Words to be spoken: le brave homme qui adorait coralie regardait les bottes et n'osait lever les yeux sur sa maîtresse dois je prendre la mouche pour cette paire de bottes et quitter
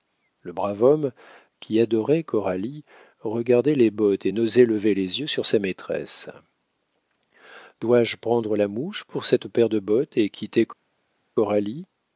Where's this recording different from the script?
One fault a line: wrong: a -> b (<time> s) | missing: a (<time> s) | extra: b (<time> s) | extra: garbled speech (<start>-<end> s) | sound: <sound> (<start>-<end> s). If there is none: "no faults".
no faults